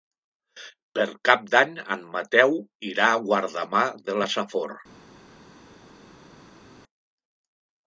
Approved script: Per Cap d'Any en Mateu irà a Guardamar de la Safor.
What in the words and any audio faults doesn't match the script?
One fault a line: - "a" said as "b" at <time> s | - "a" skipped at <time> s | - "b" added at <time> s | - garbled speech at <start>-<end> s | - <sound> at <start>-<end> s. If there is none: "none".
none